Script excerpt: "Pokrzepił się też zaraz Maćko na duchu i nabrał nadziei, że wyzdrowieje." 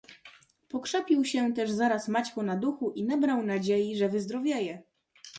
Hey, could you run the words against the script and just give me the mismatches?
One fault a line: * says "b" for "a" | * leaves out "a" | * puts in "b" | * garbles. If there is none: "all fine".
all fine